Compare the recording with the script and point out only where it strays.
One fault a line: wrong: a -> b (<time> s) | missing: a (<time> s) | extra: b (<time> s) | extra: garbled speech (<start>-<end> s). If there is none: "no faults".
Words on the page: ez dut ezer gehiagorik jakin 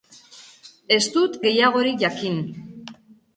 missing: ezer (1.4 s)